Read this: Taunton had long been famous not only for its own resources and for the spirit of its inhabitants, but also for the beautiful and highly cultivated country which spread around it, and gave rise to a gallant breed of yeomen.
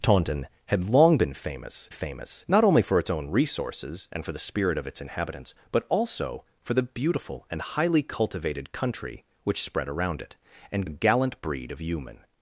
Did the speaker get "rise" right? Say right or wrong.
wrong